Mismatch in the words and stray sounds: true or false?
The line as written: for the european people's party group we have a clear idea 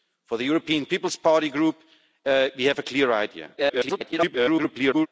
true